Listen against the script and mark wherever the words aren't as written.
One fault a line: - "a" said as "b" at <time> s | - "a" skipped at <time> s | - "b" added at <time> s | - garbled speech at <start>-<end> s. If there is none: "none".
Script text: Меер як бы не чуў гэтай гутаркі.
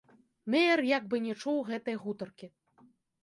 none